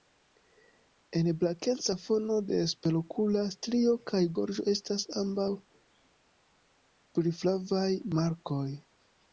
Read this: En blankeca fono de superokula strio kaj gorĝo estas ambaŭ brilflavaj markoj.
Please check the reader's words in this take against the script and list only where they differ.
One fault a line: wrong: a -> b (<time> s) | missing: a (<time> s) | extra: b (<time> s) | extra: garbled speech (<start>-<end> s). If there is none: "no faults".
no faults